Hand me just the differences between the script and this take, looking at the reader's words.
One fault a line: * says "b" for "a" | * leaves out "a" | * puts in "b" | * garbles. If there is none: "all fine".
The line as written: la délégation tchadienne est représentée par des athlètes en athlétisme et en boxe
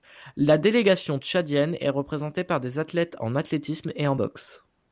all fine